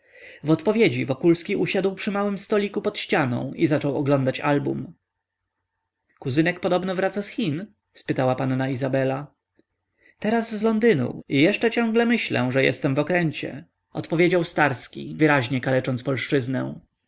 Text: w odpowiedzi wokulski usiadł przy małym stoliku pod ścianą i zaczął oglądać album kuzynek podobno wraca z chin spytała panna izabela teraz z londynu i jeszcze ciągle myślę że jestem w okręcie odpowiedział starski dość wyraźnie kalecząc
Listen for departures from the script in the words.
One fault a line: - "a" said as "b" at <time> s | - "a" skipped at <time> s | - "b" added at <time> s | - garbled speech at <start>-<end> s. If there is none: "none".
- "dość" skipped at 15.2 s